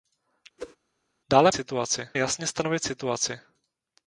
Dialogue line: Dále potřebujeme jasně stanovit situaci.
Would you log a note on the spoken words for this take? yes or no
yes